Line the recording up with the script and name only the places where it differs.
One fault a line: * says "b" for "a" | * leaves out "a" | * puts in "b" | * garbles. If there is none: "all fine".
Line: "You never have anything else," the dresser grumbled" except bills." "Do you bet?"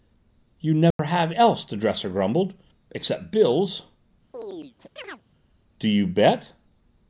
* leaves out "anything"